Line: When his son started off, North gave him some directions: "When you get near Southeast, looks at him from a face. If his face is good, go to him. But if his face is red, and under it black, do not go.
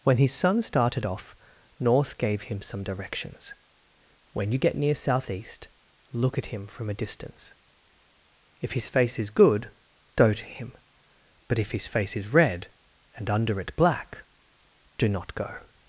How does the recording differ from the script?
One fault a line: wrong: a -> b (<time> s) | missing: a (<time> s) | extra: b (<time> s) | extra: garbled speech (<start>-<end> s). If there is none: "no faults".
wrong: looks -> look (6.1 s)
wrong: face -> distance (6.9 s)